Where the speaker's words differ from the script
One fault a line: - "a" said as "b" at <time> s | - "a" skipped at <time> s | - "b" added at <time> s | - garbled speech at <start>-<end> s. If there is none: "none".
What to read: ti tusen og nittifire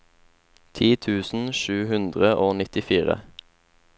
- "sju hundre" added at 1.6 s